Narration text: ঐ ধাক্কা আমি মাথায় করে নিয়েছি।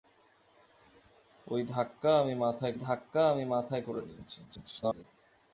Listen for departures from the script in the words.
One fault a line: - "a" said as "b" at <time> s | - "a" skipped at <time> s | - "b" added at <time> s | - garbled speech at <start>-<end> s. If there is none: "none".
- "ধাক্কা আমি মাথায়" added at 2.8 s
- garbled speech at 4.4-5.0 s